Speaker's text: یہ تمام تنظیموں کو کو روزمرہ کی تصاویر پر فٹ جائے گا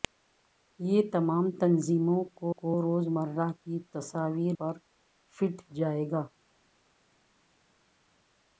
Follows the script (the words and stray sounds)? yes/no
yes